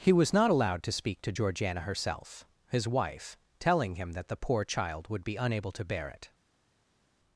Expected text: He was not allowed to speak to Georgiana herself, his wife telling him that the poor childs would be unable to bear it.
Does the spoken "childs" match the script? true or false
false